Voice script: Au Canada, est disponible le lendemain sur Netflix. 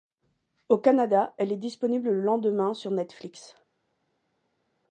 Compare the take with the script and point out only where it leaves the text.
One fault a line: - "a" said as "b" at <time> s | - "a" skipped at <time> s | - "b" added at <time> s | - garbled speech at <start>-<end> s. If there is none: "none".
- "elle" added at 1.4 s